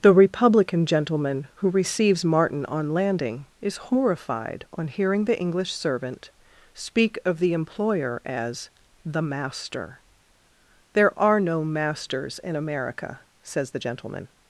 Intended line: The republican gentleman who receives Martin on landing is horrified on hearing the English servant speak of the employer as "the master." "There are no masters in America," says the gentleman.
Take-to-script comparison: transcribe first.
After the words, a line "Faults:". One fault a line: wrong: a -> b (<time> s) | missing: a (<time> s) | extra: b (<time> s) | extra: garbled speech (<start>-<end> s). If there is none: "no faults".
The republican gentleman who receives Martin on landing is horrified on hearing the English servant speak of the employer as "the master." "There are no masters in America," says the gentleman.
Faults:
no faults